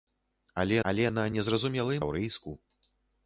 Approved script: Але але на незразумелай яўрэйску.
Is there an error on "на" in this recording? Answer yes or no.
no